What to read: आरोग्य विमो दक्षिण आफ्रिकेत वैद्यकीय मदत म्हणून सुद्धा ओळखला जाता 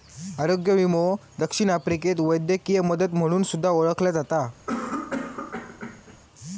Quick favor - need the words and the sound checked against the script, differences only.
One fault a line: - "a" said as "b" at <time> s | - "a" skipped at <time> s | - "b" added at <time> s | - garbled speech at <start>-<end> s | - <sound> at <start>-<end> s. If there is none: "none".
- cough at 4.7-6.2 s